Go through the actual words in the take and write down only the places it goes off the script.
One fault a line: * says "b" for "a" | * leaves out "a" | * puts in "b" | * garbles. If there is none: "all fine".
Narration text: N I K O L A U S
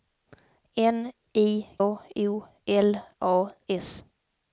* leaves out "K"
* leaves out "U"